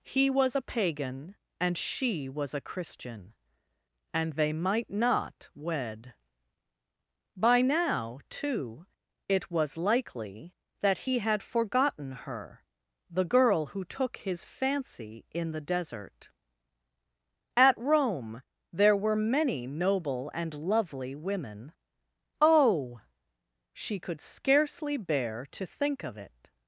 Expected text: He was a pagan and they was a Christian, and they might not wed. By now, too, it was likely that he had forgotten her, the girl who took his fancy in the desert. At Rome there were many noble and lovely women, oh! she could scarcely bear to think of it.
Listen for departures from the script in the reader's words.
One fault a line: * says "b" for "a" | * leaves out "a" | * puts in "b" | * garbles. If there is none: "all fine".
* says "she" for "they"